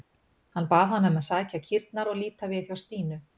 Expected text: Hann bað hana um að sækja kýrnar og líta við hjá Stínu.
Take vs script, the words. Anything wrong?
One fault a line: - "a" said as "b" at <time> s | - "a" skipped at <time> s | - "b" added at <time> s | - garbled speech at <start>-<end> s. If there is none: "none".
none